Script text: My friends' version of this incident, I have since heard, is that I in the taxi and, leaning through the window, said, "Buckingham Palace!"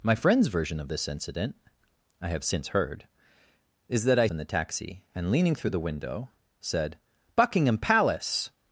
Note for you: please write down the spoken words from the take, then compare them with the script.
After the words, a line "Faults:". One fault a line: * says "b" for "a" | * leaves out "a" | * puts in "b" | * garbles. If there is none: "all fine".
My friends' version of this incident, I have since heard, is that I in the taxi and, leaning through the window, said, "Buckingham Palace!"
Faults:
all fine